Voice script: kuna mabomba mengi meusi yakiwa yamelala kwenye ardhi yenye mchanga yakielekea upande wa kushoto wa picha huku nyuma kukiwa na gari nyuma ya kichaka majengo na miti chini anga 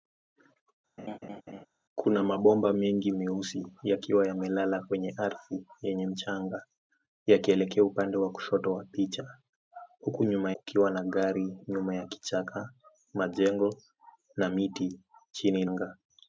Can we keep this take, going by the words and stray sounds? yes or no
no